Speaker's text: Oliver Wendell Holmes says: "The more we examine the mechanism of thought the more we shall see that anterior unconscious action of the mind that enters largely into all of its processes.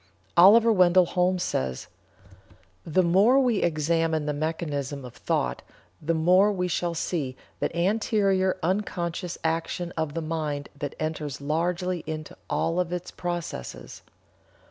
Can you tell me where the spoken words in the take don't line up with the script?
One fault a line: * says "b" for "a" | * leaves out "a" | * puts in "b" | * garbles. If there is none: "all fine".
all fine